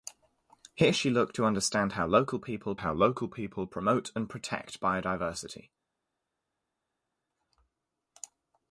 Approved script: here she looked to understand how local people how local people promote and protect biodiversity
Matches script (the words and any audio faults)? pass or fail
pass